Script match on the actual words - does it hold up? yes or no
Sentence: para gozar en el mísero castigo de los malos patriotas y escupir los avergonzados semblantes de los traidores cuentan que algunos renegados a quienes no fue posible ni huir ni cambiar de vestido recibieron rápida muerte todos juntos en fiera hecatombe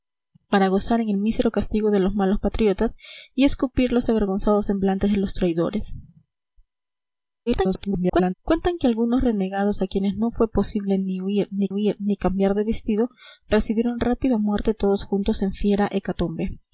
no